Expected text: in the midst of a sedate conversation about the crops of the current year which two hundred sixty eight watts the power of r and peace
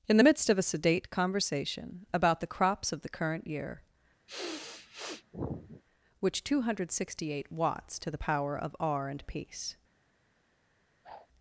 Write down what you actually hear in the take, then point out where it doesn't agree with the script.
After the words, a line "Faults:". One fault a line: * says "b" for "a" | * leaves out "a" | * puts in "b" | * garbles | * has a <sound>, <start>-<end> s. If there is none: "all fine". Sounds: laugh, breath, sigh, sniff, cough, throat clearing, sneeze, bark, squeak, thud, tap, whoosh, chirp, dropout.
in the midst of a sedate conversation about the crops of the current year which two hundred sixty eight watts to the power of r and peace
Faults:
* has a sniff, 4.3-5.8 s
* puts in "to"
* has a whoosh, 11.0-11.3 s